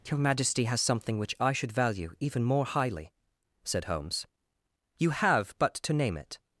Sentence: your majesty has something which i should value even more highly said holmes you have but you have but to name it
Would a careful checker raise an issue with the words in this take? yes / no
yes